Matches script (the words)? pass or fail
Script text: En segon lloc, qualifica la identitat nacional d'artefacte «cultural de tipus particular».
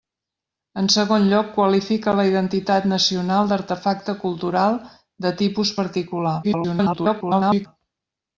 fail